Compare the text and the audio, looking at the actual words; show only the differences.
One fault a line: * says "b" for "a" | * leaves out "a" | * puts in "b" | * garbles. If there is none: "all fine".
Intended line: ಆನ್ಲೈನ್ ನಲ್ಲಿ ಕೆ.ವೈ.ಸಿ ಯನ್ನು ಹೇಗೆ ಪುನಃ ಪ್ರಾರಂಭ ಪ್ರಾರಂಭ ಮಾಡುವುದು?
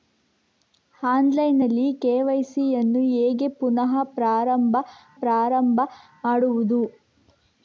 all fine